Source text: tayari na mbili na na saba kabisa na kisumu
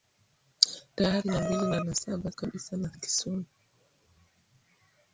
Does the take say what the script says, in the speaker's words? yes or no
yes